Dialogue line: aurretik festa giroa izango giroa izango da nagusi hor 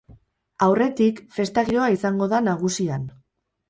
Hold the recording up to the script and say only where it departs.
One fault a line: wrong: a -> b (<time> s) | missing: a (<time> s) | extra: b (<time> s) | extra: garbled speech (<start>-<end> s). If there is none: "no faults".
missing: giroa izango (2.3 s)
wrong: hor -> han (3.0 s)